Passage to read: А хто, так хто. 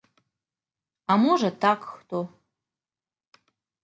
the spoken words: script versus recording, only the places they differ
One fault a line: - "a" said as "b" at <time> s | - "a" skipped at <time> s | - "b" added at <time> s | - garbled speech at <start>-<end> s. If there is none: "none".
- "хто" said as "можа" at 1.2 s